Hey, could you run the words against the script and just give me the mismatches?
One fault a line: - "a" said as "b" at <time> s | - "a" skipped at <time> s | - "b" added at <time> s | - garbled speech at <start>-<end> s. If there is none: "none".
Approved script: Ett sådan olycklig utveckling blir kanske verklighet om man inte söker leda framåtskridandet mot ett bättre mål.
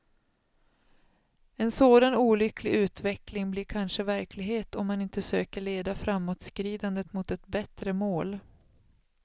- "Ett" said as "En" at 1.6 s